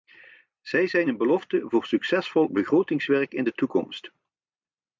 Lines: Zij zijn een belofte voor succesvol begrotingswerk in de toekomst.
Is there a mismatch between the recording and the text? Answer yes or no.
no